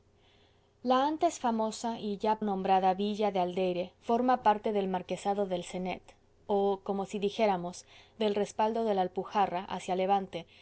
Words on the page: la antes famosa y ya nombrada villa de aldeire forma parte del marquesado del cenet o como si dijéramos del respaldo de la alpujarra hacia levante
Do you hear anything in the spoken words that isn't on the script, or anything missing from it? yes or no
no